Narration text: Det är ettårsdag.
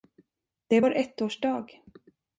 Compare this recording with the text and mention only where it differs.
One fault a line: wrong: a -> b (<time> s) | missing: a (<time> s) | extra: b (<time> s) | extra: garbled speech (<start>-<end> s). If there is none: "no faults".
extra: vår (0.8 s)